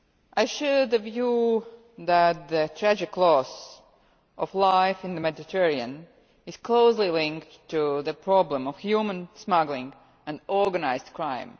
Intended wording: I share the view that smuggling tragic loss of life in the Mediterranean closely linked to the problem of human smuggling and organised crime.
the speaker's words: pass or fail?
fail